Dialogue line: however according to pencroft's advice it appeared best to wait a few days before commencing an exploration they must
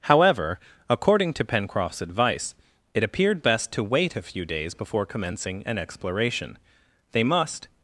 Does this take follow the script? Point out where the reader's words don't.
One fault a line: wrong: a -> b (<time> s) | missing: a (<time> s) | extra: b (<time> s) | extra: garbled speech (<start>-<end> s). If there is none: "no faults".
no faults